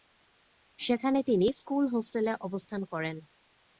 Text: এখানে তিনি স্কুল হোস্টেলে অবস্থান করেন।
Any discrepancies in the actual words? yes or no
yes